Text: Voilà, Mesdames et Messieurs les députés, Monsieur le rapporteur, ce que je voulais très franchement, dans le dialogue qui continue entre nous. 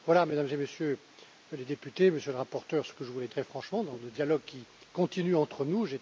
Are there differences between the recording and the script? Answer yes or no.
no